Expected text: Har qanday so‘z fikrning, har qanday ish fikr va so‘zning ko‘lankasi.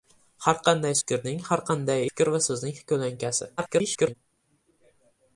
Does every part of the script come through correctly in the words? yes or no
no